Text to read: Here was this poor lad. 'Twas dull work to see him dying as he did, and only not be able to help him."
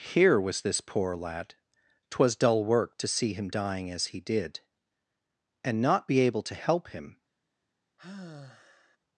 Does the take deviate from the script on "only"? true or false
true